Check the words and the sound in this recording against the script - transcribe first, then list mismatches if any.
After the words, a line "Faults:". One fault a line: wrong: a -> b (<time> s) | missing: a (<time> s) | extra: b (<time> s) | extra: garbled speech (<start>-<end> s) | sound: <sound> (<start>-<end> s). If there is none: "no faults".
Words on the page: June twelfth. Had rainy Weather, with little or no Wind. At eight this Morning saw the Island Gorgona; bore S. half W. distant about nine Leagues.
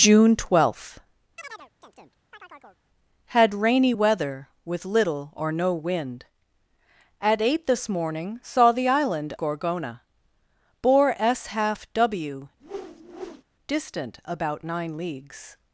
June twelfth. Had rainy Weather, with little or no Wind. At eight this Morning saw the Island Gorgona; bore S. half W. distant about nine Leagues.
Faults:
sound: chirp (1.4-2.8 s)
sound: whoosh (12.6-13.4 s)